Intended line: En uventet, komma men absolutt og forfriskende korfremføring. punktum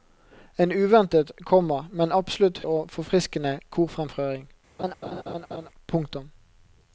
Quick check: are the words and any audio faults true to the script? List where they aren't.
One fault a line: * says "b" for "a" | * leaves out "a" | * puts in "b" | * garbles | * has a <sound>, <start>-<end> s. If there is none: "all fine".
* has a laugh, 4.8-5.7 s